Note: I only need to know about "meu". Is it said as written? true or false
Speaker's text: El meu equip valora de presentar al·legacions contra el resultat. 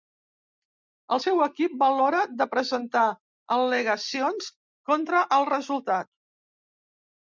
false